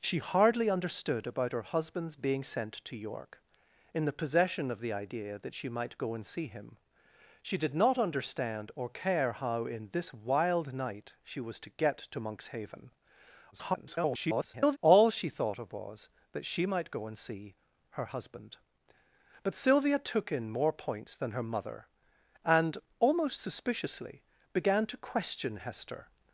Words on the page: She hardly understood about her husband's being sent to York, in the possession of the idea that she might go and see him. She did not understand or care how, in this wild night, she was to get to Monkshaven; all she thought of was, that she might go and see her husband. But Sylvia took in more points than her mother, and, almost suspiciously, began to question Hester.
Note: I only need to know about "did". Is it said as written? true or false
true